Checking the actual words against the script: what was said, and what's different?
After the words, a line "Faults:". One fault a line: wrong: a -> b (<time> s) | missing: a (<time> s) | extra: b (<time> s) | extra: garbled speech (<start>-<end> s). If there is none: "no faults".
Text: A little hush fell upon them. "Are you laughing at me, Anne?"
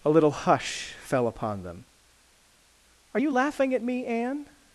A little hush fell upon them. "Are you laughing at me, Anne?"
Faults:
no faults